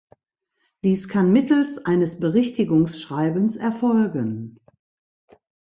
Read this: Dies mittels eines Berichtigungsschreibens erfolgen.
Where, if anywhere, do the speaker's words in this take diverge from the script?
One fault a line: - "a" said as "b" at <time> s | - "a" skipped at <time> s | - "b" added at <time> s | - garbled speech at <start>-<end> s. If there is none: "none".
- "kann" added at 1.1 s